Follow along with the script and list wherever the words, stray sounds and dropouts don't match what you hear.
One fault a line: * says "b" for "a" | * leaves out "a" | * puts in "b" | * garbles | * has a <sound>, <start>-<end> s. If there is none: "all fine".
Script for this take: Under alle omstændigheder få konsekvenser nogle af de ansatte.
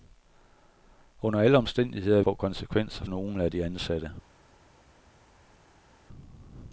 all fine